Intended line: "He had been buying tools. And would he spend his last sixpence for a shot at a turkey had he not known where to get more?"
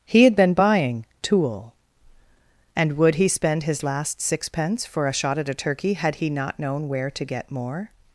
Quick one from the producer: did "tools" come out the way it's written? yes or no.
no